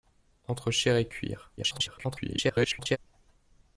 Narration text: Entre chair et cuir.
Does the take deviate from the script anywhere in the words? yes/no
yes